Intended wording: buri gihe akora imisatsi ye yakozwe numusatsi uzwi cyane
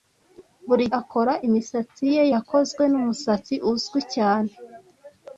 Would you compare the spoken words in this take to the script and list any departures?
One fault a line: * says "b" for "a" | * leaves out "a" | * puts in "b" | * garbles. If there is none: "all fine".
* leaves out "gihe"